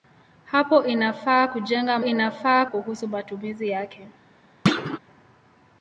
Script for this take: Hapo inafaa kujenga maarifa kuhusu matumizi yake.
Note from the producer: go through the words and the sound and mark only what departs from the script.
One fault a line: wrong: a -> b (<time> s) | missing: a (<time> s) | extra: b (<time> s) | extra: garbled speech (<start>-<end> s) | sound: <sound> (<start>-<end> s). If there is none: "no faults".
wrong: maarifa -> inafaa (2.0 s)
sound: thud (4.7-5.0 s)